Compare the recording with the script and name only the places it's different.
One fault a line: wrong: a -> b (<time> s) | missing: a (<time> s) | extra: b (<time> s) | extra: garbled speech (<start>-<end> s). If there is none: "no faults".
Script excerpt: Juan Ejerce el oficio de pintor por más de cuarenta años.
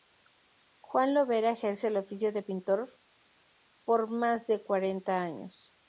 extra: Lovera (1.1 s)